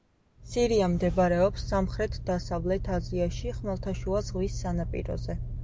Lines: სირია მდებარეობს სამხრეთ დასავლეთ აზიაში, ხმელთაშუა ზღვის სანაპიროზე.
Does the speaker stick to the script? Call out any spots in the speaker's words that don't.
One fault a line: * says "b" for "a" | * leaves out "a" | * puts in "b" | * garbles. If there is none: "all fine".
all fine